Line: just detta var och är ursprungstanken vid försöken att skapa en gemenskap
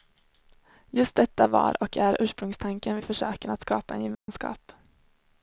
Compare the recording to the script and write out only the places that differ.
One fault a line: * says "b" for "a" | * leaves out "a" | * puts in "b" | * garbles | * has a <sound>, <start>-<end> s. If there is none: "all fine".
* has a dropout, 4.1-4.3 s